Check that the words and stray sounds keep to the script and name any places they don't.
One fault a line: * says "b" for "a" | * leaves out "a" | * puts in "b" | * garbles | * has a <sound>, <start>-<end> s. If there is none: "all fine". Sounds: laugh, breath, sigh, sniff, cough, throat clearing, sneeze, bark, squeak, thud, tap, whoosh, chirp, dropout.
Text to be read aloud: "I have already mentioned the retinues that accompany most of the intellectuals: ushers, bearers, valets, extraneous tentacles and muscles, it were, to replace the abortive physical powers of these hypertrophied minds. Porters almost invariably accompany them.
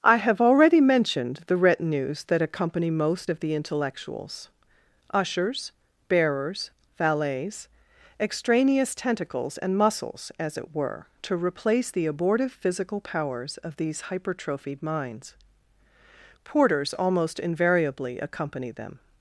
* puts in "as"